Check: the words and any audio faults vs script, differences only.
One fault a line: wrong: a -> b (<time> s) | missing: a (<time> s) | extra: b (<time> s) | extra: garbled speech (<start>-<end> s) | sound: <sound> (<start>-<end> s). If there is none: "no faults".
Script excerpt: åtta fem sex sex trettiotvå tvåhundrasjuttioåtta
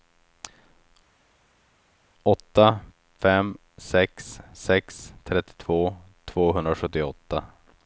no faults